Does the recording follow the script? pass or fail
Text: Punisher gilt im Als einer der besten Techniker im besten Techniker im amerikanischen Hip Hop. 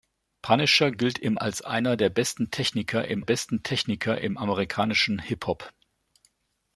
pass